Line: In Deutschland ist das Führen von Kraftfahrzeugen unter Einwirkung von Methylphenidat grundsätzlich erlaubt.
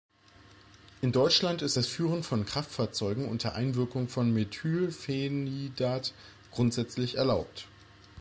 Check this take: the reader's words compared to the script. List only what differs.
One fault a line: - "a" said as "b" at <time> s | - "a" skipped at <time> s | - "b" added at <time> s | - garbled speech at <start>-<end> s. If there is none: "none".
none